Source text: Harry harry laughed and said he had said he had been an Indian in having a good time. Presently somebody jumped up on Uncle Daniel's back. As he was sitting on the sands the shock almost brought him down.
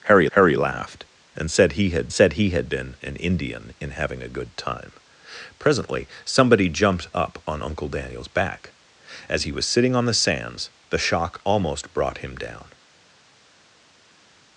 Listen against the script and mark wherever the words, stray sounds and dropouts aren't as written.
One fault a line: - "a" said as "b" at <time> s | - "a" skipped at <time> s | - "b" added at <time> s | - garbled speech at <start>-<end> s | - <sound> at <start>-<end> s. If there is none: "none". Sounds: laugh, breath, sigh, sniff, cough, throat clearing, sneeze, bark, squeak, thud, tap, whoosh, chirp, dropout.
none